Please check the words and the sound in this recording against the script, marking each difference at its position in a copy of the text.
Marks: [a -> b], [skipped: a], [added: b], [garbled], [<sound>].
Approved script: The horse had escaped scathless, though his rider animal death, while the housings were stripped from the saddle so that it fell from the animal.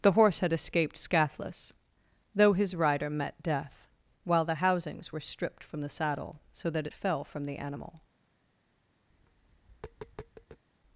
The horse had escaped scathless, though his rider [animal -> met] death, while the housings were stripped from the saddle so that it fell from the animal. [tap]